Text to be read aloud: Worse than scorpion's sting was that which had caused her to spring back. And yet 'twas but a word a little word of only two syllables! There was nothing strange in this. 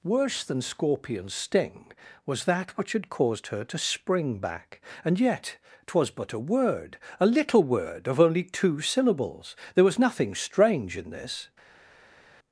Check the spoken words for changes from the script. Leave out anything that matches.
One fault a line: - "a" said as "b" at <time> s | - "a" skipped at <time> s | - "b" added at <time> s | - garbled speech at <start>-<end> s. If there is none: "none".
none